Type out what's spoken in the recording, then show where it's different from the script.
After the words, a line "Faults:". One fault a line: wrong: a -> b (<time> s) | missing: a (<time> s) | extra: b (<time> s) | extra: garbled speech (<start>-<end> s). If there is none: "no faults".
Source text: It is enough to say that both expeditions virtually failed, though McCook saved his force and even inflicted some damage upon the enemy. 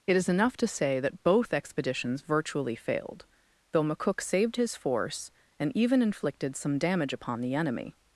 It is enough to say that both expeditions virtually failed, though McCook saved his force and even inflicted some damage upon the enemy.
Faults:
no faults